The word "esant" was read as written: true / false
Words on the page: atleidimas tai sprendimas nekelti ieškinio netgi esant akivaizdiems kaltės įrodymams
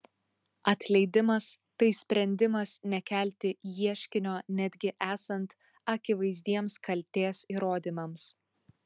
true